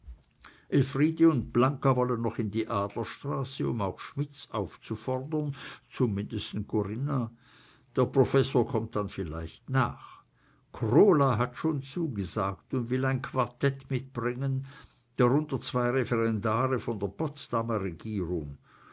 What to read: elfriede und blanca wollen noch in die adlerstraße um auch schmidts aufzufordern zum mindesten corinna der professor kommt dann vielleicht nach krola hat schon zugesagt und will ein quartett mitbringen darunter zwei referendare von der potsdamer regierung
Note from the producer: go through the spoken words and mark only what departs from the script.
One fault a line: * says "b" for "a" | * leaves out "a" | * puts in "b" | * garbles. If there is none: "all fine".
all fine